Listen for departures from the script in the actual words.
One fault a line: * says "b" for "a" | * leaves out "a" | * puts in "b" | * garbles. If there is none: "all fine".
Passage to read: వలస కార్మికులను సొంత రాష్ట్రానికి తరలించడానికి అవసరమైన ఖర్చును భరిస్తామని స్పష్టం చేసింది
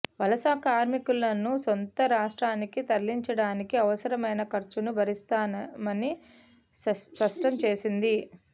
all fine